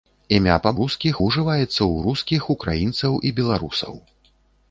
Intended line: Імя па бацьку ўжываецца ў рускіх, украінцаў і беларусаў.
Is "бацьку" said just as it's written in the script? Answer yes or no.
no